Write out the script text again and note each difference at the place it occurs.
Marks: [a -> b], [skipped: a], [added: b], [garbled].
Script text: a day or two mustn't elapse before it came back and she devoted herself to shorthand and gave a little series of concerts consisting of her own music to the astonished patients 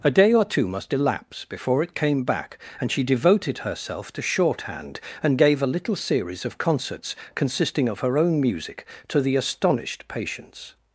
a day or two [mustn't -> must] elapse before it came back and she devoted herself to shorthand and gave a little series of concerts consisting of her own music to the astonished patients